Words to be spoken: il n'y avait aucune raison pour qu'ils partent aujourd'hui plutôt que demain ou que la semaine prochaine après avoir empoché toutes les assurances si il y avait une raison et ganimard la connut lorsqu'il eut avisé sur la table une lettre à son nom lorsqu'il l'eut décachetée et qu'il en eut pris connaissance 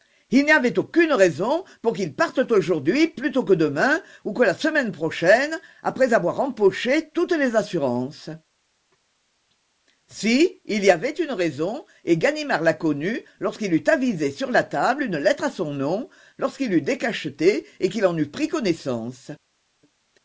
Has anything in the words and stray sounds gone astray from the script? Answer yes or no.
no